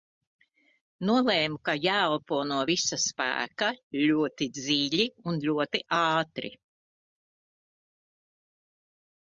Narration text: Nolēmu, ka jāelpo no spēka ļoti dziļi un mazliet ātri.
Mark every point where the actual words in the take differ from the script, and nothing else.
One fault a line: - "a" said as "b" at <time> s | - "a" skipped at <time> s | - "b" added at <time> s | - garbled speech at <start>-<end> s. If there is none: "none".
- "visa" added at 2.7 s
- "mazliet" said as "ļoti" at 5.5 s